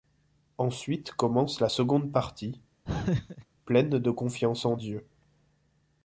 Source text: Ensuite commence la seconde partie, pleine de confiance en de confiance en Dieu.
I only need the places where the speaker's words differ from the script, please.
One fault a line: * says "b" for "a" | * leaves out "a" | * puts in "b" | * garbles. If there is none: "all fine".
* leaves out "de confiance en"